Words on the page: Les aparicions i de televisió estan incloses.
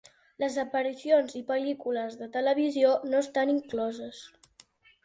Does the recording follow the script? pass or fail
fail